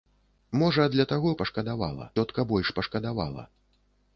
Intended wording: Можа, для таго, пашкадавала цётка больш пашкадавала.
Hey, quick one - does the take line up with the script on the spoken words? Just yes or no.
yes